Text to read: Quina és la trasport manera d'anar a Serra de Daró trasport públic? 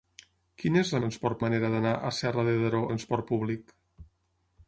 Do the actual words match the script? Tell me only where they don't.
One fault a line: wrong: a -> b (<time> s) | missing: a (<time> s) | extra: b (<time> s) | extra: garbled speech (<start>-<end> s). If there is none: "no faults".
no faults